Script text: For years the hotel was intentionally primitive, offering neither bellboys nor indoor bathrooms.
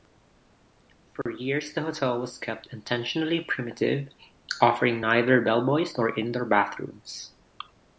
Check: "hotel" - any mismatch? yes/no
no